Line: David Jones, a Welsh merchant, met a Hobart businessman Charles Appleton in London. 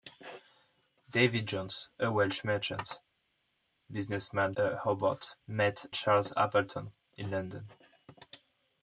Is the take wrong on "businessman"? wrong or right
wrong